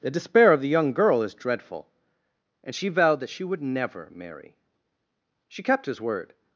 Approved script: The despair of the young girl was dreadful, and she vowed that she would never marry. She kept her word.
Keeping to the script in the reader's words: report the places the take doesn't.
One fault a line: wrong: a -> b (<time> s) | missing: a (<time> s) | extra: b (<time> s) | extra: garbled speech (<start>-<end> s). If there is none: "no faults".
wrong: was -> is (1.2 s)
wrong: her -> his (5.9 s)